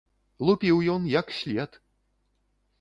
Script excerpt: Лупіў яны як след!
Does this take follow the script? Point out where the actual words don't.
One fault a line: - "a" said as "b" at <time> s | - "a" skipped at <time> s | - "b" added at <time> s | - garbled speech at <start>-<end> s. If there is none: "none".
- "яны" said as "ён" at 0.9 s